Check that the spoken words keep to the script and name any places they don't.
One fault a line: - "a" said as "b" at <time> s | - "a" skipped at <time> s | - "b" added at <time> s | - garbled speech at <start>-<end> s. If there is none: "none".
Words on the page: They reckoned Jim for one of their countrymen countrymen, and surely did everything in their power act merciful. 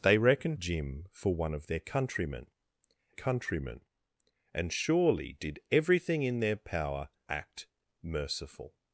none